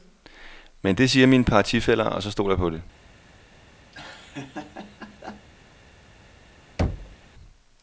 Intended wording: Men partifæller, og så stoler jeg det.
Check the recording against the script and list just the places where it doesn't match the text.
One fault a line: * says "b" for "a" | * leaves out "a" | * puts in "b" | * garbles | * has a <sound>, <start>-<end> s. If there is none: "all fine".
* puts in "det siger mine"
* puts in "på"
* has a laugh, 3.9-5.5 s
* has a thud, 6.8-7.2 s